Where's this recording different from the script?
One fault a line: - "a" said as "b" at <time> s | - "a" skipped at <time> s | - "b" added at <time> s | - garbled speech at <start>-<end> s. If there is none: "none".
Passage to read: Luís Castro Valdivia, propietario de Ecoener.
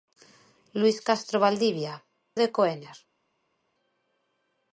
- "propietario" skipped at 1.9 s